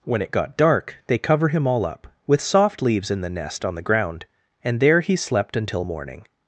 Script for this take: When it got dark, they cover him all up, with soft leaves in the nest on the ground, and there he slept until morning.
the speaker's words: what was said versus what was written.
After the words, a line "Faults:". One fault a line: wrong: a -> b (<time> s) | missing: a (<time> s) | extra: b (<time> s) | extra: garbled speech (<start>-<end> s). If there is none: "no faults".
When it got dark, they cover him all up, with soft leaves in the nest on the ground, and there he slept until morning.
Faults:
no faults